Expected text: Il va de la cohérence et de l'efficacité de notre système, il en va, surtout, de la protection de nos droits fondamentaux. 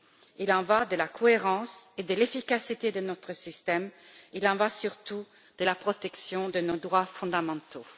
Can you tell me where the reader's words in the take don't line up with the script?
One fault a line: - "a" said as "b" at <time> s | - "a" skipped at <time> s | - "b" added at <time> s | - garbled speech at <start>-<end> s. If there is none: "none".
- "en" added at 0.5 s